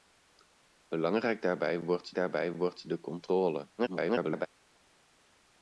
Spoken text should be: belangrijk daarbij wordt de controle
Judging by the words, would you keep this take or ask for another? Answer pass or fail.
fail